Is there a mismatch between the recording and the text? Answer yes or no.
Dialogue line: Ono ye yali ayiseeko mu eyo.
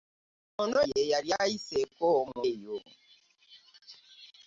no